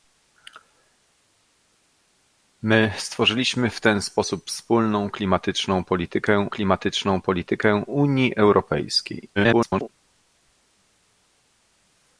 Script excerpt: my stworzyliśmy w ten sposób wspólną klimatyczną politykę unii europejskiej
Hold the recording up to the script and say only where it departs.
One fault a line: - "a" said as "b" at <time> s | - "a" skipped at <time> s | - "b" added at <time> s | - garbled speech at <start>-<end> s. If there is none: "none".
- "klimatyczną politykę" added at 6.5 s
- garbled speech at 9.4-9.9 s